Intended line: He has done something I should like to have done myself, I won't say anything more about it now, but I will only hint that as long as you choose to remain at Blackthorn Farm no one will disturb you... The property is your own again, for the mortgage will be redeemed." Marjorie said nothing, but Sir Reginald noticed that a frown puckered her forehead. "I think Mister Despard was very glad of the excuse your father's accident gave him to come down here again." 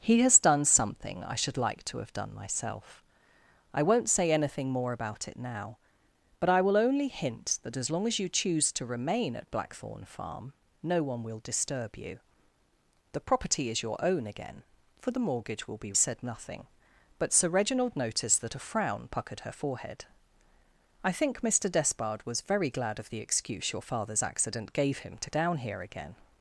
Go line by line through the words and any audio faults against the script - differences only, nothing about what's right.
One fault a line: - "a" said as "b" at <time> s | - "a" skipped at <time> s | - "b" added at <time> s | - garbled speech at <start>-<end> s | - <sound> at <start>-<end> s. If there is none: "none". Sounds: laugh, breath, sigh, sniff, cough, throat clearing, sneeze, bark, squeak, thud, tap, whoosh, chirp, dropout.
- "redeemed Marjorie" skipped at 15.9 s
- "come" skipped at 25.3 s